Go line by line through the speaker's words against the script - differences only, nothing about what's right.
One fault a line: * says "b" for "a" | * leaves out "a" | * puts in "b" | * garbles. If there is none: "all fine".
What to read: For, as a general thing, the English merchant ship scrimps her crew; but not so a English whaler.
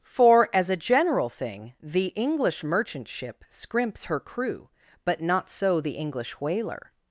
* says "the" for "a"